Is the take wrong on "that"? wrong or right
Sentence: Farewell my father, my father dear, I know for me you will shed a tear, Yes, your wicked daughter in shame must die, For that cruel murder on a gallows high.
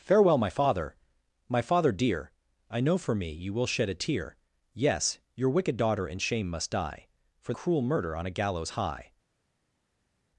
wrong